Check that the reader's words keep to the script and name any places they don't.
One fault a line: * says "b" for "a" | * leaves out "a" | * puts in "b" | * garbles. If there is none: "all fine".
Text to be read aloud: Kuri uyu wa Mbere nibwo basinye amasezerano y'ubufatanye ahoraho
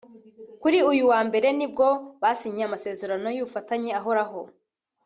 all fine